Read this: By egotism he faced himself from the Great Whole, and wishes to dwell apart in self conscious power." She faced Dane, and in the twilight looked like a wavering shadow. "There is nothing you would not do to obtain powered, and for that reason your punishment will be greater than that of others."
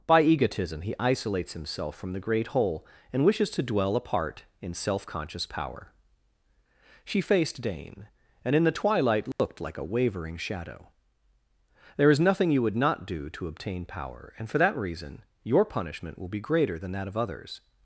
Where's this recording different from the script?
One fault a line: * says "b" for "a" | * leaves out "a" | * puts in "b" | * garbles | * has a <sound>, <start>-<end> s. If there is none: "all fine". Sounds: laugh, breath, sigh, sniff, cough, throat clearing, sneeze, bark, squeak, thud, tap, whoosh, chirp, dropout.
* says "isolates" for "faced"
* has a dropout, 9.3-9.4 s
* says "power" for "powered"